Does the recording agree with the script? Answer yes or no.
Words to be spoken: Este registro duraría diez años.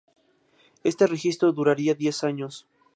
yes